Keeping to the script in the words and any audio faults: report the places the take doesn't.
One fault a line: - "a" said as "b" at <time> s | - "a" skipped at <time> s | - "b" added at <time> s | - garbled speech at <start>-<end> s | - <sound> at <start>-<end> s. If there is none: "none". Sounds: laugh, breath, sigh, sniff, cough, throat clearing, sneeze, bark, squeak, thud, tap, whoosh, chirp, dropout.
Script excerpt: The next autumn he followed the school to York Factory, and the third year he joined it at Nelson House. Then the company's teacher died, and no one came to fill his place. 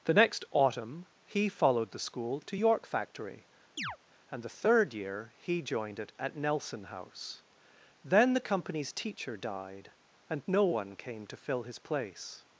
- chirp at 3.8-4.0 s